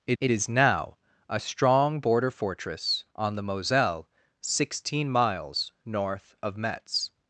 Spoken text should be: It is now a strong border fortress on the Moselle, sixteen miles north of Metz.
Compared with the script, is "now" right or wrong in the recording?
right